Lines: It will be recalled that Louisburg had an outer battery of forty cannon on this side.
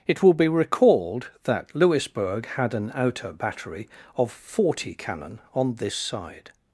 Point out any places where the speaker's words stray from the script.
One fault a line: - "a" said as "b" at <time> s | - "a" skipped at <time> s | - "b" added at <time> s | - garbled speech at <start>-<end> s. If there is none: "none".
none